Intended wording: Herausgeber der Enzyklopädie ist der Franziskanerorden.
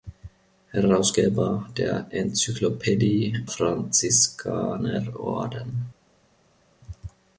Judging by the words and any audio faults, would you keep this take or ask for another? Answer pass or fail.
fail